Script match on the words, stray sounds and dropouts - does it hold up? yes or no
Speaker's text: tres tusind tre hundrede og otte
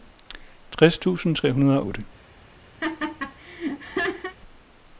no